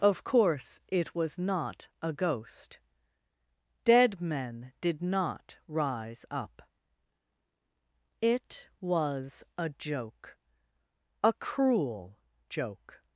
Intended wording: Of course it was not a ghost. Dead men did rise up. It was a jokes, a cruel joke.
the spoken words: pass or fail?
fail